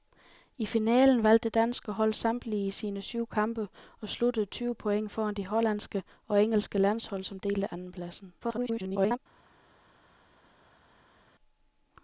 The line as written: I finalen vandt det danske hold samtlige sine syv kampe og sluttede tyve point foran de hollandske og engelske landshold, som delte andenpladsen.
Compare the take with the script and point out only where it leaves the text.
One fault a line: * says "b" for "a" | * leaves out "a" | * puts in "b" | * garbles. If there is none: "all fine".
* garbles